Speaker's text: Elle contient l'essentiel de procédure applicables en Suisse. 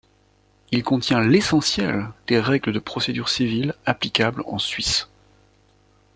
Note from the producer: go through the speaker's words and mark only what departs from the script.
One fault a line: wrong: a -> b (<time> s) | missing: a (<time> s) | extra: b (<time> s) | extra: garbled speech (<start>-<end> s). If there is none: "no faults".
wrong: Elle -> Il (0.7 s)
extra: des règles (2.2 s)
extra: civile (3.3 s)